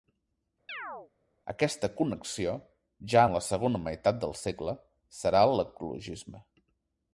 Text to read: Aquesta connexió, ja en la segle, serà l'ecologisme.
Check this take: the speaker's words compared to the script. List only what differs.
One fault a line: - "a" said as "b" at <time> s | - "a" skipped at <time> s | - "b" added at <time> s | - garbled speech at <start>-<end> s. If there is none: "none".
- "segona meitat del" added at 3.5 s